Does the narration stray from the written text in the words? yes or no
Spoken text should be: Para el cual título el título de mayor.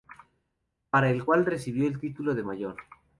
yes